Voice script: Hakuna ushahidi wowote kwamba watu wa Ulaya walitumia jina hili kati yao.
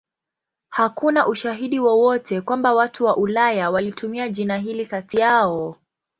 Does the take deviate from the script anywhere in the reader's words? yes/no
no